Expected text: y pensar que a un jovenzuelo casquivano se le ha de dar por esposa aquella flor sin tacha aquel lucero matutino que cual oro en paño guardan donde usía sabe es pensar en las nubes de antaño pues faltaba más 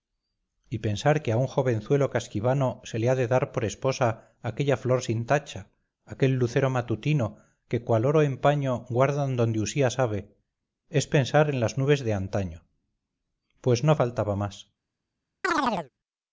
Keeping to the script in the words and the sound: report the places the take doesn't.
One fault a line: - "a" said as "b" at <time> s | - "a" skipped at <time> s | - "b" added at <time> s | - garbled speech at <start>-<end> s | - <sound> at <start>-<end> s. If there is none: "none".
- "no" added at 13.8 s
- chirp at 15.4-15.9 s